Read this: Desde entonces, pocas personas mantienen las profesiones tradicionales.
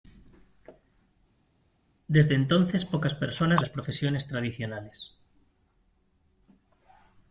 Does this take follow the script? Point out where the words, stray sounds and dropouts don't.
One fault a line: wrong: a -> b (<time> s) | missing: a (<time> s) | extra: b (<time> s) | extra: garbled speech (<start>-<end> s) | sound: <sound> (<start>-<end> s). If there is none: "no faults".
missing: mantienen (3.6 s)